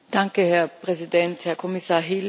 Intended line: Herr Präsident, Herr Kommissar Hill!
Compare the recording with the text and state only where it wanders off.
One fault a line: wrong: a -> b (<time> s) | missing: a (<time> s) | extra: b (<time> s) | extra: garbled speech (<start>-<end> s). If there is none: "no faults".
no faults